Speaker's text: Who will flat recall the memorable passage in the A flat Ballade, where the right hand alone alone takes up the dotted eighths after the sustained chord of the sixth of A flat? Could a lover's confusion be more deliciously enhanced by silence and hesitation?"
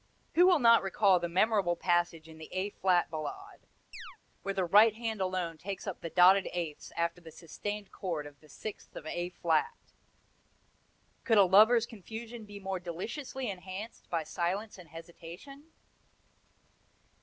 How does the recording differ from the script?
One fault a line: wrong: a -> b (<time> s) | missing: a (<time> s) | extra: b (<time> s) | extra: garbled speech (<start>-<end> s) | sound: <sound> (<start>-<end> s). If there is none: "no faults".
wrong: flat -> not (0.6 s)
sound: chirp (3.9-4.2 s)
missing: alone (5.6 s)